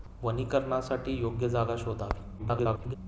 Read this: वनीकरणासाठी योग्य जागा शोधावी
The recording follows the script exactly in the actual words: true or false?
false